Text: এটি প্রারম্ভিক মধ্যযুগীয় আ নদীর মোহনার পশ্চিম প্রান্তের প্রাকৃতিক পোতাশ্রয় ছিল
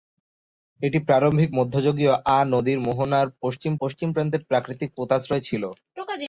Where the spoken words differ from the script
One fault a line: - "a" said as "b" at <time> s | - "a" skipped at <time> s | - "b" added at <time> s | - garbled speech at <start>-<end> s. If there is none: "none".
- "পশ্চিম" added at 3.8 s